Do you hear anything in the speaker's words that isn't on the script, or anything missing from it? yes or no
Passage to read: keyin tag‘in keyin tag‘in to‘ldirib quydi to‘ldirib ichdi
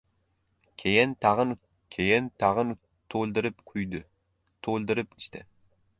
no